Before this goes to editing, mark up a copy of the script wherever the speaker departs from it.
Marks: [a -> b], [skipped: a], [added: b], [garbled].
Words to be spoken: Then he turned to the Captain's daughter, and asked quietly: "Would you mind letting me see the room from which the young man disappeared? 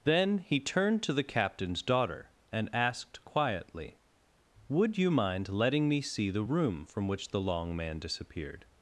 Then he turned to the Captain's daughter, and asked quietly: "Would you mind letting me see the room from which the [young -> long] man disappeared?